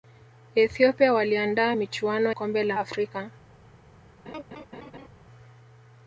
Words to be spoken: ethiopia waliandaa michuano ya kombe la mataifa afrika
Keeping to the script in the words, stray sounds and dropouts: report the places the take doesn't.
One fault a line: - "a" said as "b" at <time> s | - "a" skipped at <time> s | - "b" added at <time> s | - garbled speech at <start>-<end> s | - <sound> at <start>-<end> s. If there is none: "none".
- "ya" skipped at 2.3 s
- "mataifa" skipped at 2.8 s
- laugh at 4.3-5.1 s